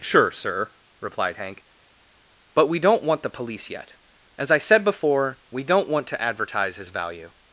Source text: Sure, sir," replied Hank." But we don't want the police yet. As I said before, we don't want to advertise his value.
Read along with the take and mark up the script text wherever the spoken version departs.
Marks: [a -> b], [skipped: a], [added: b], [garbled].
Sure, sir," replied Hank." But we don't want the police yet. As I said before, we don't want to advertise his value.